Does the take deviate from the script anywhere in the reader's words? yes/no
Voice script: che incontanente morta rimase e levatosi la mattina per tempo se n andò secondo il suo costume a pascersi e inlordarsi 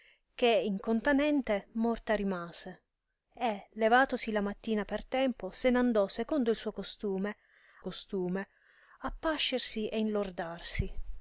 yes